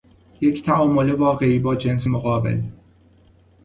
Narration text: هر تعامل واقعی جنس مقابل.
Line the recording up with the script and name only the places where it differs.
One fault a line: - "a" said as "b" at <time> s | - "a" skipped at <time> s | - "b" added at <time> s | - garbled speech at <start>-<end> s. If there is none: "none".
- "هر" said as "یک" at 0.4 s
- "با" added at 1.6 s